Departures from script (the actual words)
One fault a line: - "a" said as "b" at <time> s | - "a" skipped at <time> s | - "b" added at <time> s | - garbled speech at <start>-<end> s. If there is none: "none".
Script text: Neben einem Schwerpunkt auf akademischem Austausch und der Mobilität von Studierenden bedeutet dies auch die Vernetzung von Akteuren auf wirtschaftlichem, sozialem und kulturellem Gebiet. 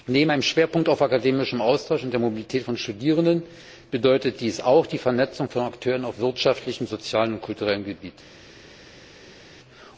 none